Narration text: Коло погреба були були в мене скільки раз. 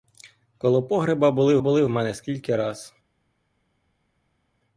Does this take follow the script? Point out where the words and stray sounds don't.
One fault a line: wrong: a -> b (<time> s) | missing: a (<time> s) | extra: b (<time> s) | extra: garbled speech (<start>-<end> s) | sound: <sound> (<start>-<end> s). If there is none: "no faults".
no faults